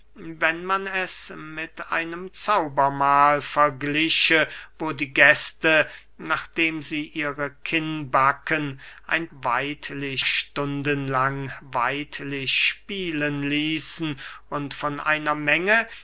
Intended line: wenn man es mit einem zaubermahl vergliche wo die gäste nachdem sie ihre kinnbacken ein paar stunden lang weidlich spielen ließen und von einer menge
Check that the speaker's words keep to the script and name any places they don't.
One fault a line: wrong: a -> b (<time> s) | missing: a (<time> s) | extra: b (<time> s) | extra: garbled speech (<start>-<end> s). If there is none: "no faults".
wrong: paar -> weidlich (9.3 s)